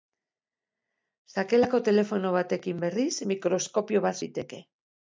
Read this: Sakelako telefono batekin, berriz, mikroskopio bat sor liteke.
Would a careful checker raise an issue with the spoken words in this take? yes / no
yes